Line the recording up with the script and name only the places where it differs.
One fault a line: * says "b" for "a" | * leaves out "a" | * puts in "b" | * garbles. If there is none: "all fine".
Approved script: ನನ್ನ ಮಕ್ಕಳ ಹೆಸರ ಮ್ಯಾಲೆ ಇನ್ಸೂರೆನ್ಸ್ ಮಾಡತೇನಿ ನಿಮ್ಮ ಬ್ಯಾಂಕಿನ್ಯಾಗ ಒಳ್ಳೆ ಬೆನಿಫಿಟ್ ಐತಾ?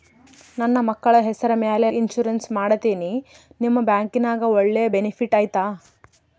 all fine